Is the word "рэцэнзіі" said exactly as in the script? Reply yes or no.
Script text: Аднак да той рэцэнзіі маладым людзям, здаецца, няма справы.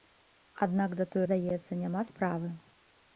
no